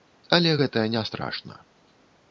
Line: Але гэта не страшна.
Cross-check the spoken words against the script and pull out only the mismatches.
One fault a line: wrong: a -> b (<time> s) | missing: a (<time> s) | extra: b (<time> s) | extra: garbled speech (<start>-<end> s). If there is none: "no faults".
no faults